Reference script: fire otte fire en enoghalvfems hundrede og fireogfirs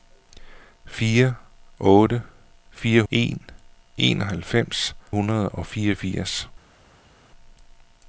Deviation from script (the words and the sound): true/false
false